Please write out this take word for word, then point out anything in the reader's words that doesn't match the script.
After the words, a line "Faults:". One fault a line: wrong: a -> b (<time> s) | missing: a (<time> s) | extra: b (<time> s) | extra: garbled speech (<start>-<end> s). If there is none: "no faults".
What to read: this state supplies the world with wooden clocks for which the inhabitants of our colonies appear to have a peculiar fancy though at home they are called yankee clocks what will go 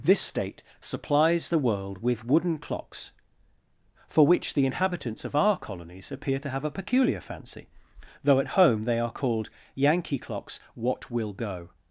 this state supplies the world with wooden clocks for which the inhabitants of our colonies appear to have a peculiar fancy though at home they are called yankee clocks what will go
Faults:
no faults